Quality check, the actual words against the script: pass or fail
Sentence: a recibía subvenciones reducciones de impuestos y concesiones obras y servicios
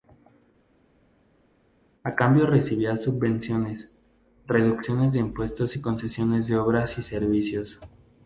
fail